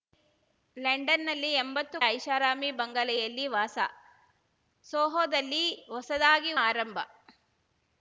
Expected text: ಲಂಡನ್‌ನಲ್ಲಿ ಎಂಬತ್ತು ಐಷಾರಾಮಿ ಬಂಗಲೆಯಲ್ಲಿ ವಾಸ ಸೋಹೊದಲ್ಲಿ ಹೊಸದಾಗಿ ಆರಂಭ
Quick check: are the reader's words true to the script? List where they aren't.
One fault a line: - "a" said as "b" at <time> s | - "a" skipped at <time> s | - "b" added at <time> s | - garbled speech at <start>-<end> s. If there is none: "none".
none